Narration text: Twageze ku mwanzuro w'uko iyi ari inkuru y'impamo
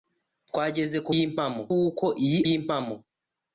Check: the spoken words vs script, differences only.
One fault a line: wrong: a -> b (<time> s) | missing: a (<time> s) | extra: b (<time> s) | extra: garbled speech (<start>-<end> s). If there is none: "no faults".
wrong: mwanzuro -> y'impamo (1.1 s)
missing: ari inkuru (2.4 s)